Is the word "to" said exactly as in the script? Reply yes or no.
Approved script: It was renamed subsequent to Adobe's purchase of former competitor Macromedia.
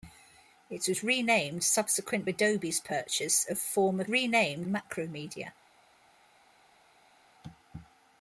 no